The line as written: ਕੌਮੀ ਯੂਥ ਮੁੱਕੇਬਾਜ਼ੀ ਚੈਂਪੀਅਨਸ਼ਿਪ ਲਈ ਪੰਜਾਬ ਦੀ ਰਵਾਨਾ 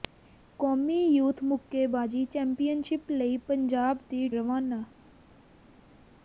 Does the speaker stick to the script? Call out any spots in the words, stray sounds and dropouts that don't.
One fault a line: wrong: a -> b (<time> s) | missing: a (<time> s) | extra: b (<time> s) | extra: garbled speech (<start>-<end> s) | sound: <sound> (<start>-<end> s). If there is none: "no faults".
no faults